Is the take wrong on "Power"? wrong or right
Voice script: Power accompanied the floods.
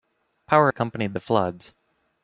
right